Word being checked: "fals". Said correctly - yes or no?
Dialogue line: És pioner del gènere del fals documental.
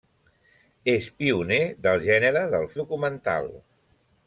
no